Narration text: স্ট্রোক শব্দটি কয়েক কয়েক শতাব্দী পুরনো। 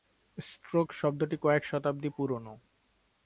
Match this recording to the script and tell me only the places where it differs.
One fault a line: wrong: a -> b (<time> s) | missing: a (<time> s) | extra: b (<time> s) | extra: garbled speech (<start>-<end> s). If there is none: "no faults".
missing: কয়েক (1.6 s)